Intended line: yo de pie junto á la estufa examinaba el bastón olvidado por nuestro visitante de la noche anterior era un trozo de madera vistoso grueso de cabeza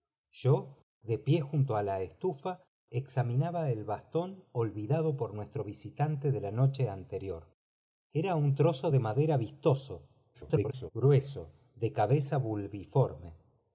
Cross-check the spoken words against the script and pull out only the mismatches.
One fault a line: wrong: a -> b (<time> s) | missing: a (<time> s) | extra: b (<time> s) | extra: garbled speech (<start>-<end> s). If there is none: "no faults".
extra: garbled speech (10.3-10.9 s)